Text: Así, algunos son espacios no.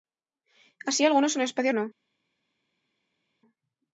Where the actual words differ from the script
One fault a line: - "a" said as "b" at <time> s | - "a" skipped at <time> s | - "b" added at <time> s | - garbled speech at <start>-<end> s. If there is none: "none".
none